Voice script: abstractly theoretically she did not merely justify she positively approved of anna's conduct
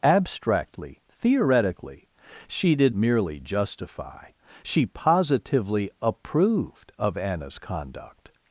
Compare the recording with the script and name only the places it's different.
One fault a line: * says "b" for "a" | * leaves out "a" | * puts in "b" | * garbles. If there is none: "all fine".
* leaves out "not"